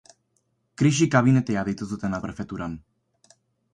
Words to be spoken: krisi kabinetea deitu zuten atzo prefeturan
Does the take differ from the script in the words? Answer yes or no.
yes